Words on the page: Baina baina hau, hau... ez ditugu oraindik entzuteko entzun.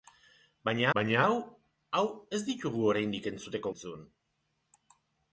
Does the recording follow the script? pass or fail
pass